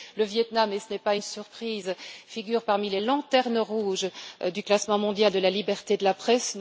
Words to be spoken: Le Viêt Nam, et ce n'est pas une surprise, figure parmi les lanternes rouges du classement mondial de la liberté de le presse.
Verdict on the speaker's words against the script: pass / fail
fail